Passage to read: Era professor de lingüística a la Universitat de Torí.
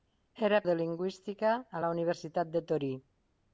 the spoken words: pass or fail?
fail